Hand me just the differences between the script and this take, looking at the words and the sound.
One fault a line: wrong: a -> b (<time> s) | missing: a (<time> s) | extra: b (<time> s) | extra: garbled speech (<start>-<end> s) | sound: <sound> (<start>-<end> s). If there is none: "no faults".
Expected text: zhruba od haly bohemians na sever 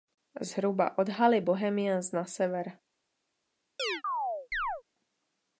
sound: chirp (3.8-4.8 s)